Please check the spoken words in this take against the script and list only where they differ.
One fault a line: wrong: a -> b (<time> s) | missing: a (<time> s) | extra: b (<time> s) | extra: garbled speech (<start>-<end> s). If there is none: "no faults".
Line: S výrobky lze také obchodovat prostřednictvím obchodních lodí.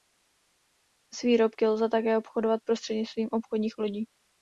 no faults